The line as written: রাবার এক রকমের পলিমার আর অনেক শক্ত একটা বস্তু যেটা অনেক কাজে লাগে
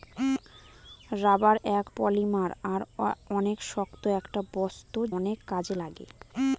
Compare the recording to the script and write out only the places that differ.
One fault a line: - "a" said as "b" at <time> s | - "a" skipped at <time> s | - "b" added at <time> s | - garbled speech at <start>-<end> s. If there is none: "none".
- "রকমের" skipped at 1.9 s
- "যেটা" skipped at 5.0 s